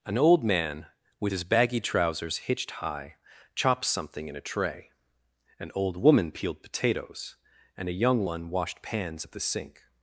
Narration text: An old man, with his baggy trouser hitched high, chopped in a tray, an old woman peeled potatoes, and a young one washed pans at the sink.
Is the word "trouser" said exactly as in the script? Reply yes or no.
no